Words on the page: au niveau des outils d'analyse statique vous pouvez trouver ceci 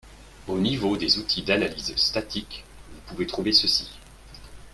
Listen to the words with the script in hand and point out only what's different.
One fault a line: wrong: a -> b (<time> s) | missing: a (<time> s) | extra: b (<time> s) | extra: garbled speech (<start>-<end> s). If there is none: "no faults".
no faults